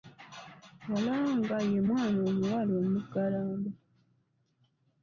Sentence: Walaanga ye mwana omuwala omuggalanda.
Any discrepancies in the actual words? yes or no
no